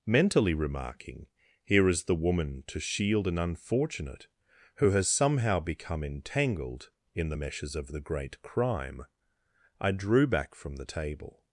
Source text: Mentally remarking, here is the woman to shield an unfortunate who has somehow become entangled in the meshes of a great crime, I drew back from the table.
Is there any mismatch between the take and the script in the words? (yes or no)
yes